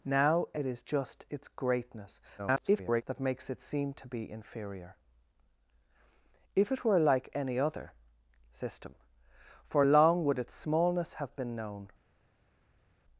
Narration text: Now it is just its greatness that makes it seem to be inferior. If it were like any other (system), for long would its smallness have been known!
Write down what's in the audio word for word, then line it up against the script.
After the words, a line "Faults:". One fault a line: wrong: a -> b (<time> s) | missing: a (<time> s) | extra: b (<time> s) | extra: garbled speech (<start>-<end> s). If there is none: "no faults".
Now it is just its greatness [garbled] that makes it seem to be inferior. If it were like any other (system), for long would its smallness have been known!
Faults:
extra: garbled speech (2.4-3.0 s)